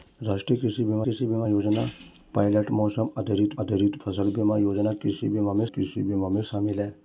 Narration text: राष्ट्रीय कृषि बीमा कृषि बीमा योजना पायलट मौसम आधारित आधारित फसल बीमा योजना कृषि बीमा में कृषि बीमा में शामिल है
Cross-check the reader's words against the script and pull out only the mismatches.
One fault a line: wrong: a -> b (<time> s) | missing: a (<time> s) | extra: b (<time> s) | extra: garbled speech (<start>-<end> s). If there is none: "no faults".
no faults